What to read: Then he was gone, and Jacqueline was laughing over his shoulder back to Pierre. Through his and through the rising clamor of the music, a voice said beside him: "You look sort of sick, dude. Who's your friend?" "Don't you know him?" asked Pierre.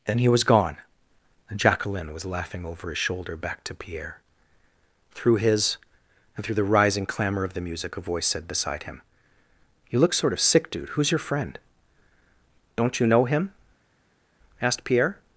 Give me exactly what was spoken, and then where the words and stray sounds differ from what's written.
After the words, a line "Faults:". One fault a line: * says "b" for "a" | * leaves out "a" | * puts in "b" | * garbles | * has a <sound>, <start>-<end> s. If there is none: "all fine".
Then he was gone, and Jacqueline was laughing over his shoulder back to Pierre. Through his and through the rising clamor of the music, a voice said beside him: "You look sort of sick, dude. Who's your friend?" "Don't you know him?" asked Pierre.
Faults:
all fine